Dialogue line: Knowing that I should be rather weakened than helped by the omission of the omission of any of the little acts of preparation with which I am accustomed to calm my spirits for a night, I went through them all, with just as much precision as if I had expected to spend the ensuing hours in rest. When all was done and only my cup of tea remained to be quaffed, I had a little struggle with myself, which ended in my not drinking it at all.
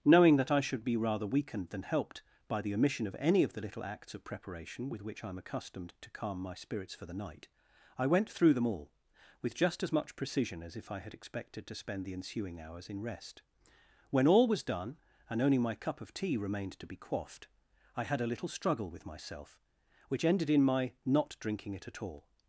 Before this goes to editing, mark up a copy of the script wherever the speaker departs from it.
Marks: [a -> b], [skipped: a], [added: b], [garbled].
Knowing that I should be rather weakened than helped by the omission of [skipped: the omission of] any of the little acts of preparation with which I am accustomed to calm my spirits for [a -> the] night, I went through them all, with just as much precision as if I had expected to spend the ensuing hours in rest. When all was done and only my cup of tea remained to be quaffed, I had a little struggle with myself, which ended in my not drinking it at all.